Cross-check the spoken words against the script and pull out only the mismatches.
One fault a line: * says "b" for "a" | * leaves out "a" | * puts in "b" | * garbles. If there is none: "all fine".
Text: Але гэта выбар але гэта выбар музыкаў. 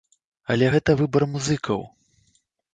* leaves out "але гэта выбар"